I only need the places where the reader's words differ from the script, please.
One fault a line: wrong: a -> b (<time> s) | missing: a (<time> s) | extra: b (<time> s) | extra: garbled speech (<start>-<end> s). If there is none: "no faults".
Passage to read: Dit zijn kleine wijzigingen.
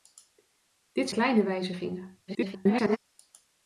missing: zijn (1.1 s)
extra: garbled speech (2.3-3.0 s)